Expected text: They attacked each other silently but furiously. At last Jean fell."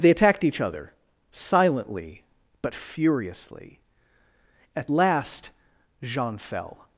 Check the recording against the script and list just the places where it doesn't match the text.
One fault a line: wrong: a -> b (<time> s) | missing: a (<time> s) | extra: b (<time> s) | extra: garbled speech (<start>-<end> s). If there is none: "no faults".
no faults